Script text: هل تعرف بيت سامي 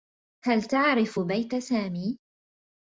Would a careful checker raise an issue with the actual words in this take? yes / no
no